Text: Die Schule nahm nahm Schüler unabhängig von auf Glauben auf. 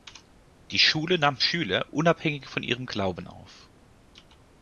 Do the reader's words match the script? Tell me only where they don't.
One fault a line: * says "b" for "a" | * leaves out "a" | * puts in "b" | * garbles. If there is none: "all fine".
* leaves out "nahm"
* says "ihrem" for "auf"